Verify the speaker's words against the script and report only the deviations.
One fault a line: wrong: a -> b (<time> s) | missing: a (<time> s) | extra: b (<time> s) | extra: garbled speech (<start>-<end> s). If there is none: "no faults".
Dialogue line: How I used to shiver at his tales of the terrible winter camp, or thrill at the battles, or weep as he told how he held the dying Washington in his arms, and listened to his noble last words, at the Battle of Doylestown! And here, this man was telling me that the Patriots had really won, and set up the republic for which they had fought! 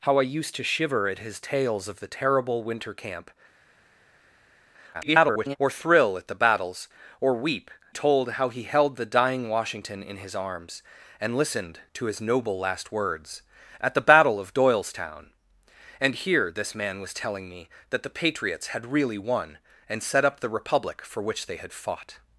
extra: garbled speech (4.9-5.6 s)
missing: as he (7.7 s)